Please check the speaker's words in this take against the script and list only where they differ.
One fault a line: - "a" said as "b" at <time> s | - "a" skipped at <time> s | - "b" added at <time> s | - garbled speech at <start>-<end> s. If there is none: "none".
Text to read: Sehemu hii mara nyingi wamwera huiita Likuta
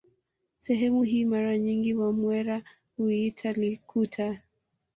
none